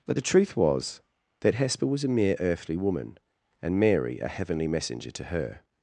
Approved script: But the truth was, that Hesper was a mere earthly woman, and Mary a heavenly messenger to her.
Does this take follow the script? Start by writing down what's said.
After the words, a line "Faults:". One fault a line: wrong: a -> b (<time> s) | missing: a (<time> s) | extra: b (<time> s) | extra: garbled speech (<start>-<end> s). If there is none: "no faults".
But the truth was, that Hesper was a mere earthly woman, and Mary a heavenly messenger to her.
Faults:
no faults